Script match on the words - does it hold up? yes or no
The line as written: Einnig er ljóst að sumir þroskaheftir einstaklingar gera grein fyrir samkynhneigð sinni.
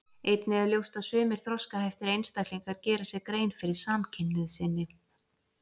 no